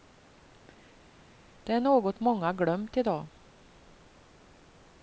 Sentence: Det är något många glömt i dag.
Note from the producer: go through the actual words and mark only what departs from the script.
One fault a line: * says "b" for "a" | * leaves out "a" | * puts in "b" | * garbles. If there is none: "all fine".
all fine